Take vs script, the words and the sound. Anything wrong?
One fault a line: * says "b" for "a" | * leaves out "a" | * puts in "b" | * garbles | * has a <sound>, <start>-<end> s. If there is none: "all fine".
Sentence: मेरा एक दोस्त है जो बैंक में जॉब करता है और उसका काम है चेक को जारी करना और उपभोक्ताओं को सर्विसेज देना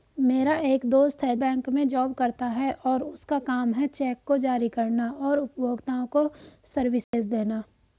* leaves out "जो"
* has a dropout, 7.0-7.1 s